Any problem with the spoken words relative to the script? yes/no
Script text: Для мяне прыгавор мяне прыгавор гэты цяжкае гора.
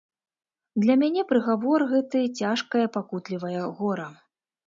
yes